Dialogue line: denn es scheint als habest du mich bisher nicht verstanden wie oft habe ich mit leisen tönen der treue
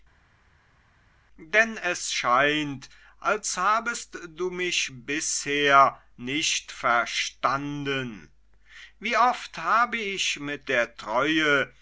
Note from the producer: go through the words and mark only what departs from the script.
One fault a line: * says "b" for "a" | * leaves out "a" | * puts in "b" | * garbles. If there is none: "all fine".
* leaves out "leisen tönen"